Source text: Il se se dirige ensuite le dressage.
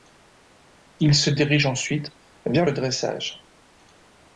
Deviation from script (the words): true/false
true